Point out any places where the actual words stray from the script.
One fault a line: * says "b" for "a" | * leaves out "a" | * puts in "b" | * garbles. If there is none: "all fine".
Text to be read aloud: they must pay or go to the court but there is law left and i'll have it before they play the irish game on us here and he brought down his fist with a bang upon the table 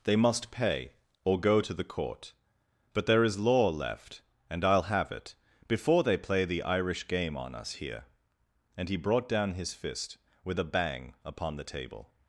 all fine